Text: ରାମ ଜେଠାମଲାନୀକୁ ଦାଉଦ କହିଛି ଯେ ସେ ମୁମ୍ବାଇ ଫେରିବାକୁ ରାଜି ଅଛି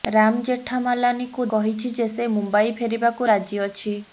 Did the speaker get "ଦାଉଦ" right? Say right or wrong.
wrong